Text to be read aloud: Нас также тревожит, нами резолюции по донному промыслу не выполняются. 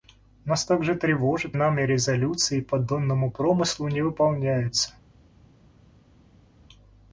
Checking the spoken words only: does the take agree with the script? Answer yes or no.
yes